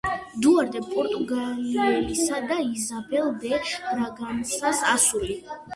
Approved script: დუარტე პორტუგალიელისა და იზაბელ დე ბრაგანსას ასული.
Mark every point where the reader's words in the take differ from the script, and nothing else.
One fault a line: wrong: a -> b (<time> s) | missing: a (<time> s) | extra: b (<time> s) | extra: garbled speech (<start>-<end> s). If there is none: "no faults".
no faults